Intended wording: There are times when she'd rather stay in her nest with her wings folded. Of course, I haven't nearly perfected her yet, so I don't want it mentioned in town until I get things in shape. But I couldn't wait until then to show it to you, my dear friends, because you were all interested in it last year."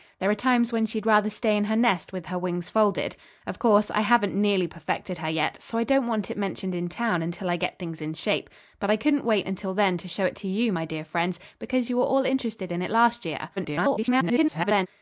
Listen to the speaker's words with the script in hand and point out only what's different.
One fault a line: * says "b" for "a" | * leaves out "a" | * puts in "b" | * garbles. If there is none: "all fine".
* garbles